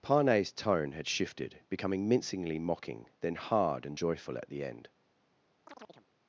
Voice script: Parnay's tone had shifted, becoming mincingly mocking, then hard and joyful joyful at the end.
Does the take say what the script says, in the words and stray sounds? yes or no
no